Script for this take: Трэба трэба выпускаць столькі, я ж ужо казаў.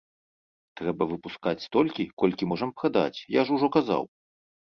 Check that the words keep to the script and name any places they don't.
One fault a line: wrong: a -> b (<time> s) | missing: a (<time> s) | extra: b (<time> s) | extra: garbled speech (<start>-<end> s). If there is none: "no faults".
missing: трэба (1.0 s)
extra: колькі можам прадаць (2.2 s)